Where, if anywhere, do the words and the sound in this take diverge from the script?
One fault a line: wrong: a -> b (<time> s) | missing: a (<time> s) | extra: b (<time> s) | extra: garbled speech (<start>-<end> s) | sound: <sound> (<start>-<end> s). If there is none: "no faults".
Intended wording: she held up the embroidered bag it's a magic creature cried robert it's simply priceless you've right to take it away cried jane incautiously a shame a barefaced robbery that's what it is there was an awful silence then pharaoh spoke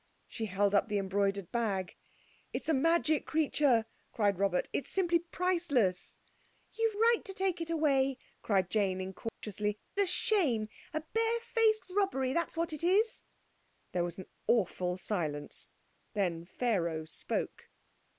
sound: dropout (9.3-9.4 s)